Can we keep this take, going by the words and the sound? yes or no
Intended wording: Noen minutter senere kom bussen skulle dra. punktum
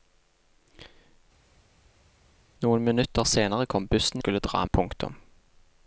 yes